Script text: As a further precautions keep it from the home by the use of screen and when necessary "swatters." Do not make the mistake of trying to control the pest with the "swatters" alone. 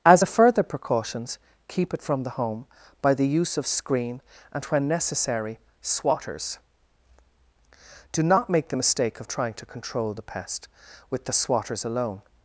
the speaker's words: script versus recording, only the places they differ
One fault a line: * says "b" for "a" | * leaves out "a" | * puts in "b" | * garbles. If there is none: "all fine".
all fine